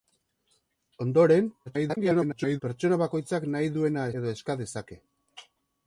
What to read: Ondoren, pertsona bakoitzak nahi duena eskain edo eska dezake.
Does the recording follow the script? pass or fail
fail